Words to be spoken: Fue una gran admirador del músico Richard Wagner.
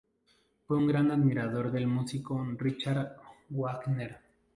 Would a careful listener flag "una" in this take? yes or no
yes